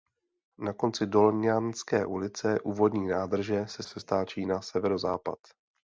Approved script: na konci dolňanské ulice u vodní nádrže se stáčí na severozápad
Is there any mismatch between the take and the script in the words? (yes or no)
yes